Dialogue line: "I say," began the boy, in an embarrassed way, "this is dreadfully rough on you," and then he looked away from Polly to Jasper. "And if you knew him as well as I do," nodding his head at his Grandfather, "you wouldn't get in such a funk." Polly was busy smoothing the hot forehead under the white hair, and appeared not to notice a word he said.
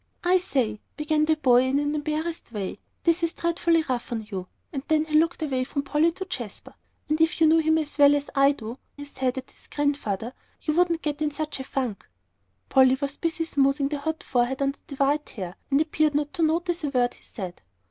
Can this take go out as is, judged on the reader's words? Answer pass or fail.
fail